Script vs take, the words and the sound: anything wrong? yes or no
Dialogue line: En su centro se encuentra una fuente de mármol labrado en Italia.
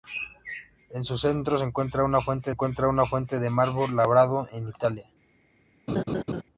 yes